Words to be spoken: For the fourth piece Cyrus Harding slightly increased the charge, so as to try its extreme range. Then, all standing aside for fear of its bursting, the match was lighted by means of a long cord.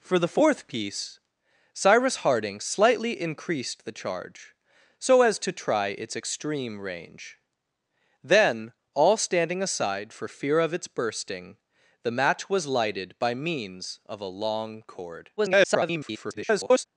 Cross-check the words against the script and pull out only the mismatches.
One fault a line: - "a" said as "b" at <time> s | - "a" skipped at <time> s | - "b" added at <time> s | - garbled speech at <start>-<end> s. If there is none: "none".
- garbled speech at 15.4-16.9 s